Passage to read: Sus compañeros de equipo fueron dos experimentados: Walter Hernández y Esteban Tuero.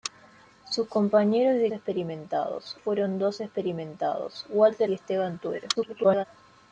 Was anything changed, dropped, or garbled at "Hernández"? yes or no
yes